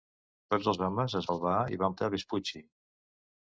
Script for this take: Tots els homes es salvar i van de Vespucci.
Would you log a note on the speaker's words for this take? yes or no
no